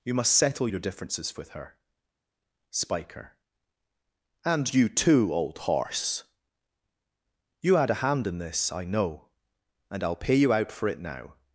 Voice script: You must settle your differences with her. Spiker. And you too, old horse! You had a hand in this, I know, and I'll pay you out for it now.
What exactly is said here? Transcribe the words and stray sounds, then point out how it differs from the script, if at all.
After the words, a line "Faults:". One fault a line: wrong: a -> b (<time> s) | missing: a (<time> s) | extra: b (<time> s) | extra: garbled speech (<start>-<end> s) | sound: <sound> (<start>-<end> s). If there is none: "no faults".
You must settle your differences with her. Spiker. And you too, old horse! You had a hand in this, I know, and I'll pay you out for it now.
Faults:
no faults